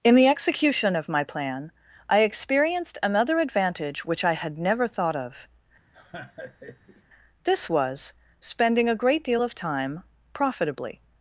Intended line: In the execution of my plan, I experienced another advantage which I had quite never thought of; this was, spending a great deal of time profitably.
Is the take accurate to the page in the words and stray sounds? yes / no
no